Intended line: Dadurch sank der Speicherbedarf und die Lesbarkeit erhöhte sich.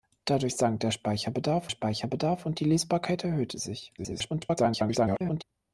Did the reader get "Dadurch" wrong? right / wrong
right